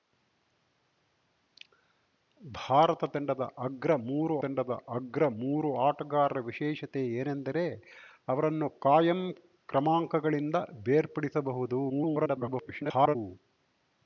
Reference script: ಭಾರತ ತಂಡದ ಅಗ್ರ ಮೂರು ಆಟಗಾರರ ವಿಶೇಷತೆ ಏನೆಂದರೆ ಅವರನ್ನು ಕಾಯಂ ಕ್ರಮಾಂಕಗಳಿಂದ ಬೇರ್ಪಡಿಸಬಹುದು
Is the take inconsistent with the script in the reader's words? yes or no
yes